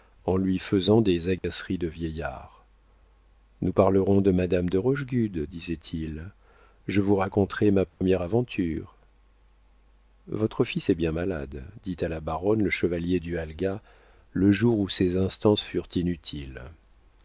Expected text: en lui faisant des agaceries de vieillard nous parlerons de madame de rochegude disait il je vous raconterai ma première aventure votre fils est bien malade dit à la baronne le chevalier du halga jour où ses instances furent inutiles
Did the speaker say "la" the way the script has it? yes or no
yes